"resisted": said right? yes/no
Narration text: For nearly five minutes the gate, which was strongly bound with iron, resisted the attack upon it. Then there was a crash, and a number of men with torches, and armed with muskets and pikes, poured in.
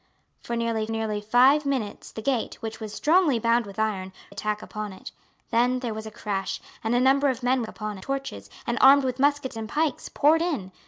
no